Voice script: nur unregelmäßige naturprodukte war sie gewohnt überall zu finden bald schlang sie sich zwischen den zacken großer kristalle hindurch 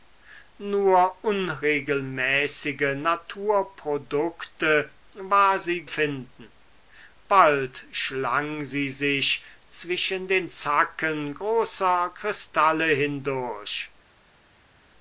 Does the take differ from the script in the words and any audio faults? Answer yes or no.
yes